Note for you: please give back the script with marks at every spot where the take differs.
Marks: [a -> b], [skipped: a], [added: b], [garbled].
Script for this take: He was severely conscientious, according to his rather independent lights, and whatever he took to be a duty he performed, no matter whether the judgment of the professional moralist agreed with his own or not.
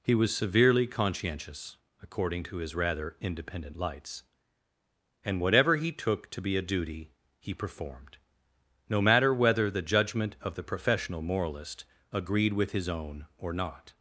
He was severely conscientious, according to his rather independent lights, and whatever he took to be a duty he performed, no matter whether the judgment of the professional moralist agreed with his own or not.